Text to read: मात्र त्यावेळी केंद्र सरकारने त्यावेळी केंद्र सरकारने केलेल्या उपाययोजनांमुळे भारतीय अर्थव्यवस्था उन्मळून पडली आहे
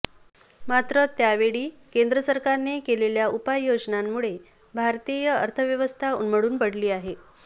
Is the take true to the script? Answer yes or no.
no